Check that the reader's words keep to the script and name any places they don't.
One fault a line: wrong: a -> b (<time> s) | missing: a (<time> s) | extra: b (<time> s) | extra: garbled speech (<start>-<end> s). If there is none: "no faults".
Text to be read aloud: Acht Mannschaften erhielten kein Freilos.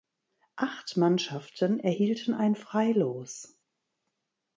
wrong: kein -> ein (2.3 s)